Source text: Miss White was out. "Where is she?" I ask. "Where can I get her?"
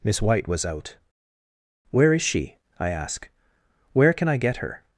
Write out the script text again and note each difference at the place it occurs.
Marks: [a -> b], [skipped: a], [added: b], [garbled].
Miss White was out. "Where is she?" I ask. "Where can I get her?"